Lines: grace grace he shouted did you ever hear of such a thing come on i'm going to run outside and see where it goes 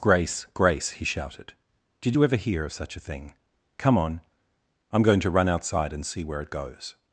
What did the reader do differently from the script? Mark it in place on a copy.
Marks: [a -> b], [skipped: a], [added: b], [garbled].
grace grace he shouted did you ever hear of such a thing come on i'm going to run outside and see where it goes